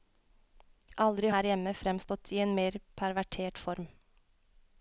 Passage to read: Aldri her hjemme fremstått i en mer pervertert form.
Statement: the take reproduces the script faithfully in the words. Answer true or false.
true